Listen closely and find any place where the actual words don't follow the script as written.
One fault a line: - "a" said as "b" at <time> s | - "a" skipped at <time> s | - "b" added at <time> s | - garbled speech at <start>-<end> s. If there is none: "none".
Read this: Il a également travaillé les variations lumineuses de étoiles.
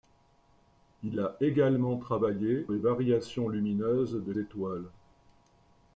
none